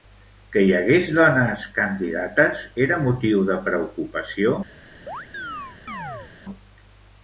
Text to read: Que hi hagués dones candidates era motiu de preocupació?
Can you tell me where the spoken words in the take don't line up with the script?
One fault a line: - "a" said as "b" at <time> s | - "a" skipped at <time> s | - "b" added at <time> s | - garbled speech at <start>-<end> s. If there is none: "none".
none